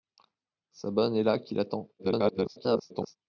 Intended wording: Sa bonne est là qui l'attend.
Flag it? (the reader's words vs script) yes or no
yes